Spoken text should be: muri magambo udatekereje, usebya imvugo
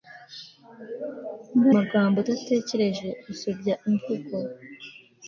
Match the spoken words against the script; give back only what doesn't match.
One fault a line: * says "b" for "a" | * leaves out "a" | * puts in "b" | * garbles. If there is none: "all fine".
all fine